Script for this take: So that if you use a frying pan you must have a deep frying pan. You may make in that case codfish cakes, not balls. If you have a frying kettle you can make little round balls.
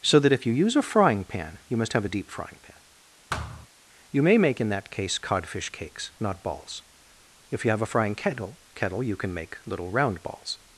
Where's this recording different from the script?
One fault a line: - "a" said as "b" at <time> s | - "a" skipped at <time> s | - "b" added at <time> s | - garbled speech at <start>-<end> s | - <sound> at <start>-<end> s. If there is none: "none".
- thud at 3.3-3.7 s
- "kettle" added at 8.8 s